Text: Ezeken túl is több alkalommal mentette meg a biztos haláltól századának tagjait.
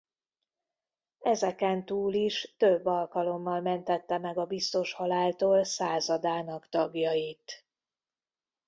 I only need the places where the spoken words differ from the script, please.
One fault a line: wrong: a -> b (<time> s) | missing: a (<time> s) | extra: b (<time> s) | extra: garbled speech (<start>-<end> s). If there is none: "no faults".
no faults